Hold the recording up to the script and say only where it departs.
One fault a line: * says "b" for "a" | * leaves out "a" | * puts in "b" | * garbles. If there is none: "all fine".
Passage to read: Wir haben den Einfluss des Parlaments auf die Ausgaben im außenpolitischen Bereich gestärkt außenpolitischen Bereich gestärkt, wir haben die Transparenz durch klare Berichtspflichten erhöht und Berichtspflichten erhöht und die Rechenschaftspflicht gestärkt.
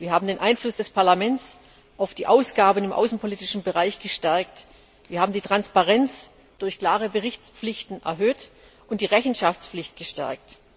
* leaves out "außenpolitischen Bereich gestärkt"
* leaves out "Berichtspflichten erhöht und"